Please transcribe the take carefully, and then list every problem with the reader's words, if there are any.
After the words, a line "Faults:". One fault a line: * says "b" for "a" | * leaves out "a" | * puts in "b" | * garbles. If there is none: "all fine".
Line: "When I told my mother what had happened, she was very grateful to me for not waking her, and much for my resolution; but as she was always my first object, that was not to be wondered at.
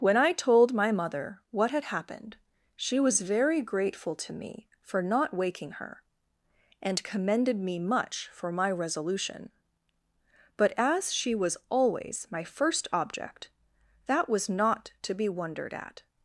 "When I told my mother what had happened, she was very grateful to me for not waking her, and commended me much for my resolution; but as she was always my first object, that was not to be wondered at.
Faults:
* puts in "commended me"